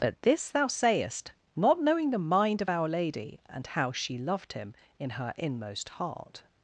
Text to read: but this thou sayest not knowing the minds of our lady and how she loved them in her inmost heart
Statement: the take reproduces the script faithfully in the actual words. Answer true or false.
false